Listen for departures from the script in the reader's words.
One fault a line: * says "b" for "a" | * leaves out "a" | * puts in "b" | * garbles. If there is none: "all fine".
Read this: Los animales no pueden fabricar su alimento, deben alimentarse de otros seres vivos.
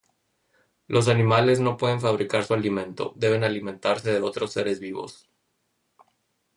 all fine